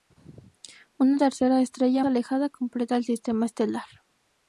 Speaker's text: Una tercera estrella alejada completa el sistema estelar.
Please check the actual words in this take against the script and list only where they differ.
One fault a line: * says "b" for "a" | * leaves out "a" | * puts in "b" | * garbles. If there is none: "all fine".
all fine